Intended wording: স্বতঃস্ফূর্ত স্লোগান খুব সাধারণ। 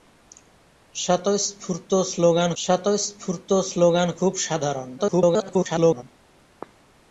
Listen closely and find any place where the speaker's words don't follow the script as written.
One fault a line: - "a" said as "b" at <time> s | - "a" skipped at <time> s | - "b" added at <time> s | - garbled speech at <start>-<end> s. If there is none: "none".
- "স্বতঃস্ফূর্ত স্লোগান" added at 2.6 s
- garbled speech at 5.0-6.0 s